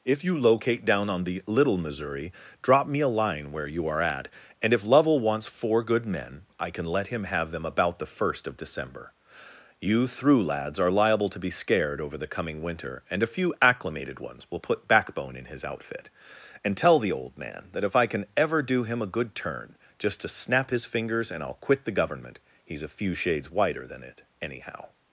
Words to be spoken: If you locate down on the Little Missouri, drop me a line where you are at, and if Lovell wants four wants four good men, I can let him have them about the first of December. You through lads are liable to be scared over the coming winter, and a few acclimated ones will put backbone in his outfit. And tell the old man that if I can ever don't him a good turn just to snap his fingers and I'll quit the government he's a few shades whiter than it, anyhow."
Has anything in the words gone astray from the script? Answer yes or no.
yes